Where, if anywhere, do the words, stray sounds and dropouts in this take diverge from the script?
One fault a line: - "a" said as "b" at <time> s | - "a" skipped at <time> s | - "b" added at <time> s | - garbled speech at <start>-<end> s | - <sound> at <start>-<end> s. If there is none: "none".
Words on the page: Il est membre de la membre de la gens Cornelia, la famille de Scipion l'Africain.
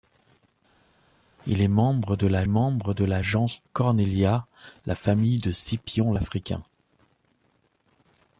none